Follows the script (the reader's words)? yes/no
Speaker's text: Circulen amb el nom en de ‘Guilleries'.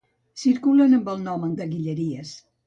yes